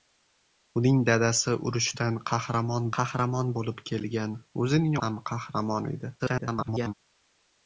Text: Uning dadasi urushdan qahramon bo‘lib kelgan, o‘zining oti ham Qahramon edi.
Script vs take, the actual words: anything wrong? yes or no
yes